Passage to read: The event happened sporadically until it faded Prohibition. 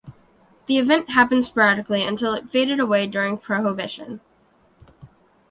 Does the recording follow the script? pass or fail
fail